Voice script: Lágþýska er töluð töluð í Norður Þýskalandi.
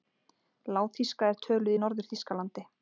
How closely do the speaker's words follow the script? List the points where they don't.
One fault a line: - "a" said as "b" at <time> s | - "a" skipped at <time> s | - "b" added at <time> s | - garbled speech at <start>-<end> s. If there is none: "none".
- "töluð" skipped at 1.8 s